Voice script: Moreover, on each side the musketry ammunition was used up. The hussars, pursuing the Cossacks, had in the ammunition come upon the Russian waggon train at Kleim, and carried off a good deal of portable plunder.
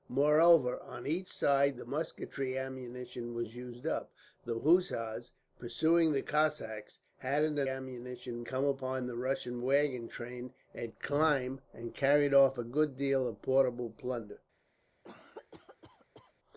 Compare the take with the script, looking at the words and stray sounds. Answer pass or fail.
fail